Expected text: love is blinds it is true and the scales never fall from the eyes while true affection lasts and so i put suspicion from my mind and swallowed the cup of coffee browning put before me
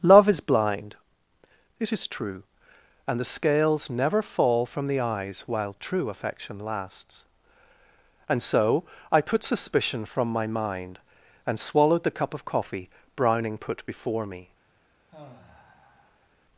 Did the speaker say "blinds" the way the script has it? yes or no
no